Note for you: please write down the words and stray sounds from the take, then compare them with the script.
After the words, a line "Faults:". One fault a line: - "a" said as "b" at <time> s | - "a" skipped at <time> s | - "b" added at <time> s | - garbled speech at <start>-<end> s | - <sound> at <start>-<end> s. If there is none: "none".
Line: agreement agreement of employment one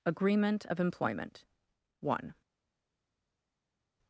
agreement of employment one
Faults:
- "agreement" skipped at 0.7 s